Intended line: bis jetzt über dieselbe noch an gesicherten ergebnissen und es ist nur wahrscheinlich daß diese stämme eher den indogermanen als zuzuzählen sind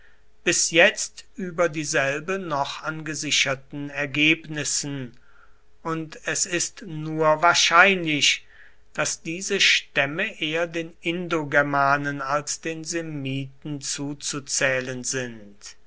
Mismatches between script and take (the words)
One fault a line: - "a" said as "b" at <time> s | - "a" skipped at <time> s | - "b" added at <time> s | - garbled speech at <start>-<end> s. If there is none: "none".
- "den semiten" added at 12.6 s